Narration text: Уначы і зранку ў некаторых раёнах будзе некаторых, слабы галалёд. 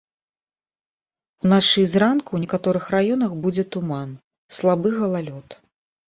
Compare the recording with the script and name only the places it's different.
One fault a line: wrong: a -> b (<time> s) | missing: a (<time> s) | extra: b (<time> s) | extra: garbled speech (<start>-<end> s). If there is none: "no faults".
wrong: некаторых -> туман (3.8 s)